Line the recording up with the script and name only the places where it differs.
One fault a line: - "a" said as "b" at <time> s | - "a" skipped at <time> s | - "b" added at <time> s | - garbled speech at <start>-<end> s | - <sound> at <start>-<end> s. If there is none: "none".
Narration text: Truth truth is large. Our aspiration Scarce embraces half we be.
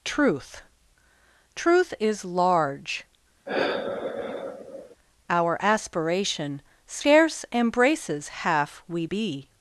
- sigh at 3.5-5.0 s